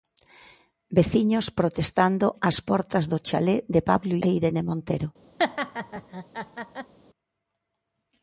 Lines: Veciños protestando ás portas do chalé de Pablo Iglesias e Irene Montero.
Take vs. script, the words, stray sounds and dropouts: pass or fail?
fail